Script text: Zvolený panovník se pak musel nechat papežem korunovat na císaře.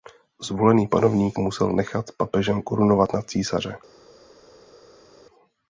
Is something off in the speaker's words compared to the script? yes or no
yes